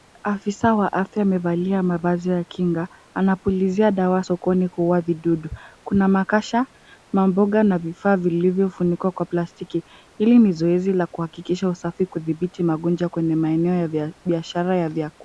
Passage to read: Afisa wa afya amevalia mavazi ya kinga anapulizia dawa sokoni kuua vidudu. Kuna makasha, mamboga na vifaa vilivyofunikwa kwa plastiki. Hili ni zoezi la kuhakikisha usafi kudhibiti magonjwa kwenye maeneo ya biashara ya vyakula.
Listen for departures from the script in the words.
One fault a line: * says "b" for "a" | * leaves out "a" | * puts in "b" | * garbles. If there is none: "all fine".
all fine